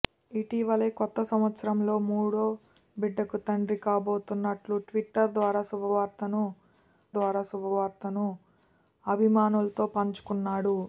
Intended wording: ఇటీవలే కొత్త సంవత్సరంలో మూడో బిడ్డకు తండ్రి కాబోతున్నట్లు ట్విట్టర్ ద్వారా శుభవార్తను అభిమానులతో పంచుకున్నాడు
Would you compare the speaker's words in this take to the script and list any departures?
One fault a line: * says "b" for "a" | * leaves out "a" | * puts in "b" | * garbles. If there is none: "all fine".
* puts in "ద్వారా శుభవార్తను"